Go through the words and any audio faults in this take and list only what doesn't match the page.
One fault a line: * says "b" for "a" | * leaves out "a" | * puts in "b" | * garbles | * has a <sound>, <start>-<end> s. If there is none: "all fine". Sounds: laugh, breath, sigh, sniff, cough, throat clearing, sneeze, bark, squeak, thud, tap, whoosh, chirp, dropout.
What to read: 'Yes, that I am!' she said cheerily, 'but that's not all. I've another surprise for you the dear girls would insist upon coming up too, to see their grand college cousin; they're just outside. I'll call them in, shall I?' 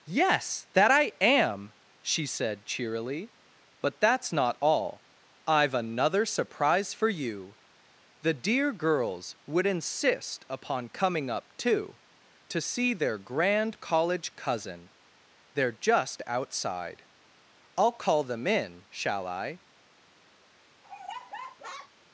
* has a laugh, 20.8-21.9 s